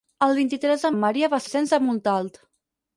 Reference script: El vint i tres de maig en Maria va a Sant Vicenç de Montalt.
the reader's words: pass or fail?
fail